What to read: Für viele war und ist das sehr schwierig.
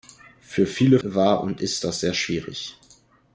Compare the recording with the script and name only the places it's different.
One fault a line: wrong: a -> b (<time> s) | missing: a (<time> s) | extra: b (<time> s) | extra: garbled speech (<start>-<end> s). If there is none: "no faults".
no faults